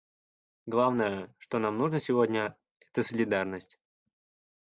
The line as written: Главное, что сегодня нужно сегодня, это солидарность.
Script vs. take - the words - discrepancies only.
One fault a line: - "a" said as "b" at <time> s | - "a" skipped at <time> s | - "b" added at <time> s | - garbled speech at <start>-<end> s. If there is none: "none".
- "сегодня" said as "нам" at 1.6 s